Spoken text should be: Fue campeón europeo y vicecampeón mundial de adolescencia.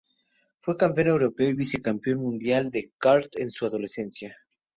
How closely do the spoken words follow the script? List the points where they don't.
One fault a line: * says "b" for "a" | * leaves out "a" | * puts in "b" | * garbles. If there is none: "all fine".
* puts in "kart en su"